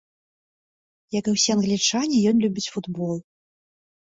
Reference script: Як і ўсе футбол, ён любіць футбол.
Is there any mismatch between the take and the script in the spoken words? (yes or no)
yes